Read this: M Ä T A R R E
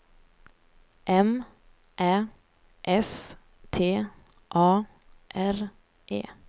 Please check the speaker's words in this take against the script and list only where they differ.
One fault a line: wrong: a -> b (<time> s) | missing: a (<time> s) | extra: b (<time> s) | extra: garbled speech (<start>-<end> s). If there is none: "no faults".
extra: S (3.0 s)
missing: R (5.6 s)